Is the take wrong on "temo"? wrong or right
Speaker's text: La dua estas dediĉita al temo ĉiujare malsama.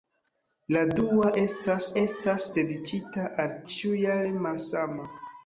wrong